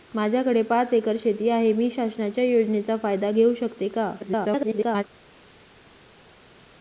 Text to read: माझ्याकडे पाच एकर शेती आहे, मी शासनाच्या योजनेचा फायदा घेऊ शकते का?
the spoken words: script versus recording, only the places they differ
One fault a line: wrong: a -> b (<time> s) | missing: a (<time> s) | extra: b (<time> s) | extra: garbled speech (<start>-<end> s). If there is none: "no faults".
extra: garbled speech (4.2-5.0 s)